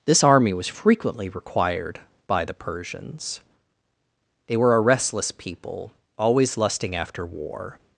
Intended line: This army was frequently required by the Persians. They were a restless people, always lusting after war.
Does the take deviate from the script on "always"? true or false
false